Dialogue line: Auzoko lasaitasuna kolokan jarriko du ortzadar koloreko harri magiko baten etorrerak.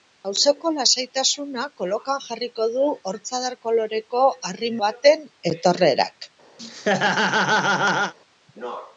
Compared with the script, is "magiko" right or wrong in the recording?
wrong